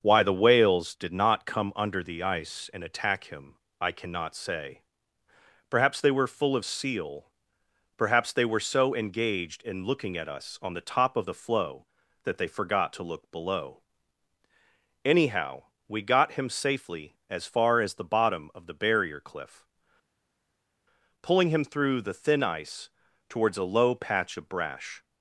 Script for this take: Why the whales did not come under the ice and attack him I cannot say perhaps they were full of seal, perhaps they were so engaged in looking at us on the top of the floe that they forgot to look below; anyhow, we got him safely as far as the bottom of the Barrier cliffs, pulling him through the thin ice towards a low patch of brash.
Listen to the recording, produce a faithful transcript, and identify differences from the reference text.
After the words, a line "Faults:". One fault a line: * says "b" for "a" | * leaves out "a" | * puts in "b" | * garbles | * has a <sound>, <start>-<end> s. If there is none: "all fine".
Why the whales did not come under the ice and attack him I cannot say perhaps they were full of seal, perhaps they were so engaged in looking at us on the top of the floe that they forgot to look below; anyhow, we got him safely as far as the bottom of the Barrier cliff, pulling him through the thin ice towards a low patch of brash.
Faults:
* says "cliff" for "cliffs"